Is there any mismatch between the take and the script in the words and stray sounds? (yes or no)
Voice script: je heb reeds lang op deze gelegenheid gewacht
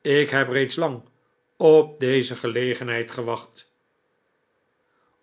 yes